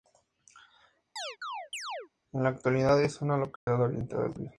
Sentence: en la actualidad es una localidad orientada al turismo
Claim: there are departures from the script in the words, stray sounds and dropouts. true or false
true